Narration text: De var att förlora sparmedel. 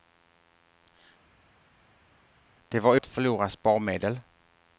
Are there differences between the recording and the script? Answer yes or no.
no